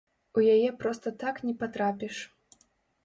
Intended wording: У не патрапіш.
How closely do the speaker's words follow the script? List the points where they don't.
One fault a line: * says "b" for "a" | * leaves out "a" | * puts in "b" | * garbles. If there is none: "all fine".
* puts in "яе проста так"